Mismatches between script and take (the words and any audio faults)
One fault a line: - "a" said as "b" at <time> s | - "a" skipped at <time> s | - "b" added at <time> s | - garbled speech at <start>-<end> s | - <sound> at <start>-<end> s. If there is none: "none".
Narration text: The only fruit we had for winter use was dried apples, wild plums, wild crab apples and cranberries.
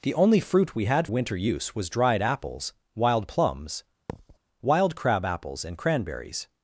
- "for" skipped at 1.1 s
- thud at 4.1-4.4 s